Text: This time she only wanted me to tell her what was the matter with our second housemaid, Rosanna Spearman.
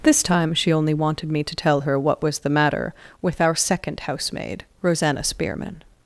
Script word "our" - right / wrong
right